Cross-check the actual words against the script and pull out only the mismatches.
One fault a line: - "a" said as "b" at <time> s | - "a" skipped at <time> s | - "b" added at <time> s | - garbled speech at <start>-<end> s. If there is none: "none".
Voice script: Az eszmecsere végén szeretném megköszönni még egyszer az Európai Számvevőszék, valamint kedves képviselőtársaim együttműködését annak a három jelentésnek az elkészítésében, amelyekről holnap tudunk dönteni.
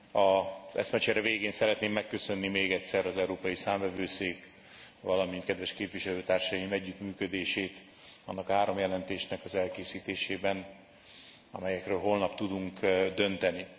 none